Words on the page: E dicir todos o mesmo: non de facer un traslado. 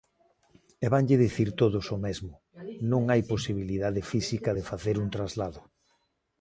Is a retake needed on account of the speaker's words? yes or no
yes